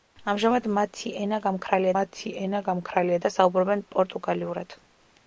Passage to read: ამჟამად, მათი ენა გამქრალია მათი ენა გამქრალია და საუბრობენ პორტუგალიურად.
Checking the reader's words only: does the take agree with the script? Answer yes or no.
yes